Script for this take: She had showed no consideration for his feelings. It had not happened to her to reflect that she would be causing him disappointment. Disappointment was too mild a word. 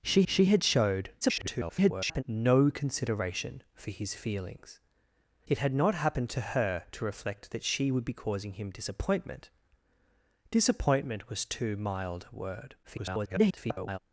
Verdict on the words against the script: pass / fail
fail